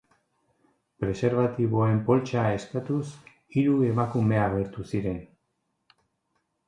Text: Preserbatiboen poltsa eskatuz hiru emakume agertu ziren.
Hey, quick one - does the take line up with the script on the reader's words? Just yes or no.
yes